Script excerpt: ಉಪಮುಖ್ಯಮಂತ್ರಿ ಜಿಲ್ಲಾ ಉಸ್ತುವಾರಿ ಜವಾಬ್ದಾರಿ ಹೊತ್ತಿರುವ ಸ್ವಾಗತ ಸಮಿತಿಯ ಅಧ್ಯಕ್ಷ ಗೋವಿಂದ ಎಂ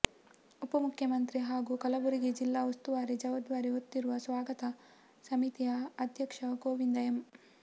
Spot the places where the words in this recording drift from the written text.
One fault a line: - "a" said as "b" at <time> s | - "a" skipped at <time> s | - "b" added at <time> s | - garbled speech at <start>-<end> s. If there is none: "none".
- "ಹಾಗೂ ಕಲಬುರಗಿ" added at 1.4 s